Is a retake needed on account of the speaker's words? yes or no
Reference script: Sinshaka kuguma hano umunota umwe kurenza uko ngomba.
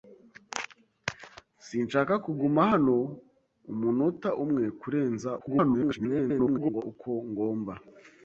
yes